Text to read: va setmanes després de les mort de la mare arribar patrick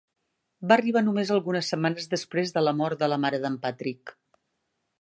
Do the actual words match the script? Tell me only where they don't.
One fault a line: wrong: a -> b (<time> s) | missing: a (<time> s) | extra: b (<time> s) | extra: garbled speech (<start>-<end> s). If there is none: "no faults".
extra: arribar només algunes (0.8 s)
wrong: les -> la (2.6 s)
wrong: arribar -> d'en (3.4 s)